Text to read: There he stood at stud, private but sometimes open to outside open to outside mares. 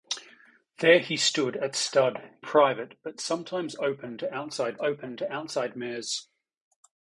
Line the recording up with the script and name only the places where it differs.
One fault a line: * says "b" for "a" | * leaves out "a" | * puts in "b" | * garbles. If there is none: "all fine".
all fine